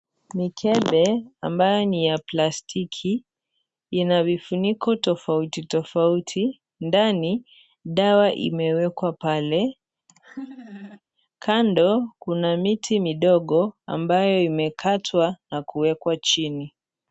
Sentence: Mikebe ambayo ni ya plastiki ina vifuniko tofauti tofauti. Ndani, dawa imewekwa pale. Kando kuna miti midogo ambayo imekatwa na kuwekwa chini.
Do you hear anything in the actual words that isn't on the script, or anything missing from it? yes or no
no